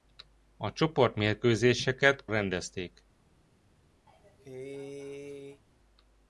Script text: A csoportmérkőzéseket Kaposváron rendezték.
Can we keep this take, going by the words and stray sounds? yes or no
no